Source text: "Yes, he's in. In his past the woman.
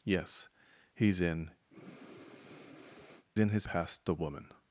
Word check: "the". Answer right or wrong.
right